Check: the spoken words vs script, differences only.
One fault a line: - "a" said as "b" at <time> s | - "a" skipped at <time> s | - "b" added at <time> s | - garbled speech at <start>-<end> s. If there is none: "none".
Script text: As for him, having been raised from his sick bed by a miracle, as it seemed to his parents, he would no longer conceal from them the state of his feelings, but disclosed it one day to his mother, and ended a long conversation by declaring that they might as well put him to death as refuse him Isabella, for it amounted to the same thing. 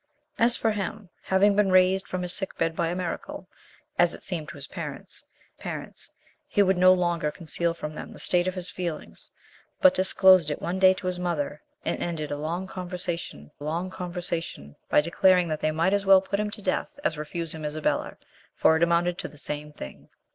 - "parents" added at 5.5 s
- "long conversation" added at 13.6 s